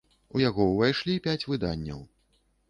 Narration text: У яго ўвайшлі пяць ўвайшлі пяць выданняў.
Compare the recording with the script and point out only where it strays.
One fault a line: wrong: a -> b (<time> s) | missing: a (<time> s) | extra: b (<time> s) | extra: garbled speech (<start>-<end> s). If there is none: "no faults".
missing: ўвайшлі пяць (1.5 s)